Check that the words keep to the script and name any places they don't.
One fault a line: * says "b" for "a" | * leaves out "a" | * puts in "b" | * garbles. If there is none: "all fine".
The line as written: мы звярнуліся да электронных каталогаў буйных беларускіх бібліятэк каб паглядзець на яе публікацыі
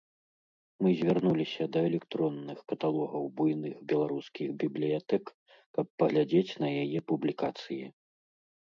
all fine